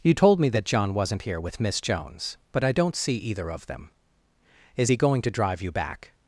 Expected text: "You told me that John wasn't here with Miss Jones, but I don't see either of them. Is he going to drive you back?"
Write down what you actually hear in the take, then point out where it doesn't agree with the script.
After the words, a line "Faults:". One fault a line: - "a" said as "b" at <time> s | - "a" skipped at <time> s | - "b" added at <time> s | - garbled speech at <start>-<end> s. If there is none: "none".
"You told me that John wasn't here with Miss Jones, but I don't see either of them. Is he going to drive you back?"
Faults:
none